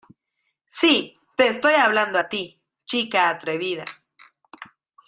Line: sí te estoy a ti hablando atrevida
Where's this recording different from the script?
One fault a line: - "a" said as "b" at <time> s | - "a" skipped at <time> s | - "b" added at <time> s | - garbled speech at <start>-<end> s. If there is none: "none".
- "hablando" added at 1.7 s
- "hablando" said as "chica" at 2.8 s